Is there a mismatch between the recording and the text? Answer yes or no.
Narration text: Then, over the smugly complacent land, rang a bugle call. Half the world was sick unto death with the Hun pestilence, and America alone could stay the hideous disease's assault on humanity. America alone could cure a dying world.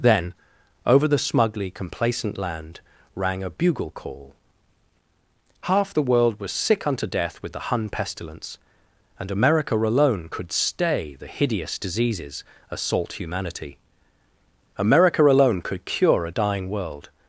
yes